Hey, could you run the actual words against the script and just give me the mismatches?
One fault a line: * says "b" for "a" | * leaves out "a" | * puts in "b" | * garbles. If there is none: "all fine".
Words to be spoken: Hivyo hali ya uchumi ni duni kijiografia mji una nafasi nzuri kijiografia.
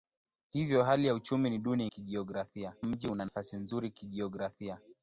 all fine